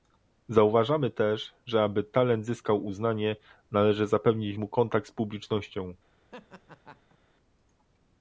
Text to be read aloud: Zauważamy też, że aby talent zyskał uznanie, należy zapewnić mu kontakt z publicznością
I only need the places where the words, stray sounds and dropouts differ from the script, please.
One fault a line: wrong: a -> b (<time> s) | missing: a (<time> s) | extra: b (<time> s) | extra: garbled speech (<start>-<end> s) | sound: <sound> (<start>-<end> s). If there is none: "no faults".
sound: laugh (6.3-7.2 s)